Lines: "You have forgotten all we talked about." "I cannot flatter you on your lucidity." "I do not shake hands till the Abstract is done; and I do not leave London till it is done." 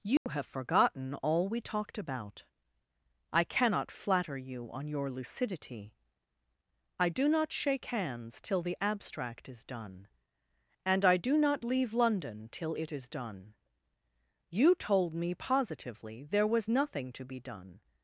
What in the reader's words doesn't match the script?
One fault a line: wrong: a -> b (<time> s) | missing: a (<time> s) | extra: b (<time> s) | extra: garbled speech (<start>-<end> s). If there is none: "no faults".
extra: You told me positively there was nothing to be done (14.5 s)